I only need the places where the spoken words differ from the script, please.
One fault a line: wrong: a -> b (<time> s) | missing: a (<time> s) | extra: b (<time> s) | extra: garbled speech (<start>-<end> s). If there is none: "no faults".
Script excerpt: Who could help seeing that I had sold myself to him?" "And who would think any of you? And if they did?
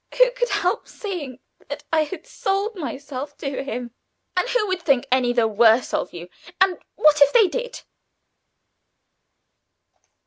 extra: the worse (5.3 s)
extra: what (7.0 s)